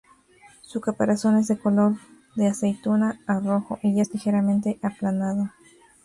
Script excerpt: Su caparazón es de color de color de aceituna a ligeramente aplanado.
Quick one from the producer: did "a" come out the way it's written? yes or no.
no